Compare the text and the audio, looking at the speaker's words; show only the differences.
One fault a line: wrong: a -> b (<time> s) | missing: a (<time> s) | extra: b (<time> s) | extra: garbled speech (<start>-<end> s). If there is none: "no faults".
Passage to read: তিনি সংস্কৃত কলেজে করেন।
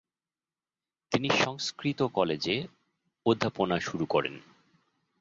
extra: অধ্যাপনা শুরু (3.2 s)